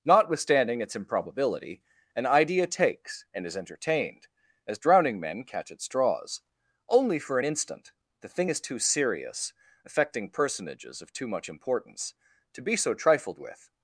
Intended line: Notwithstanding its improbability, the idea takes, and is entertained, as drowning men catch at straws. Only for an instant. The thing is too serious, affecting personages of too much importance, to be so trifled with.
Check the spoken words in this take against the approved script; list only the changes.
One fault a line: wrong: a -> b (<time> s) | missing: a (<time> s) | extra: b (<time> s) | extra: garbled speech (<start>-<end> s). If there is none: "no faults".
wrong: the -> an (2.1 s)